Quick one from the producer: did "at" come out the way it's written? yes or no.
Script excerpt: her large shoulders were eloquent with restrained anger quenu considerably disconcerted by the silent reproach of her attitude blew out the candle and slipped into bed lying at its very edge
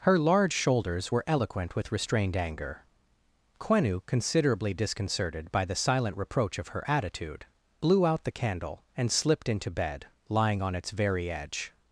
no